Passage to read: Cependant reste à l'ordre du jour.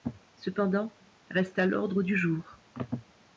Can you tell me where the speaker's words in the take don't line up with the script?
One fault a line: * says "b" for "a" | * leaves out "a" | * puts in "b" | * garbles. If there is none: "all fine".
all fine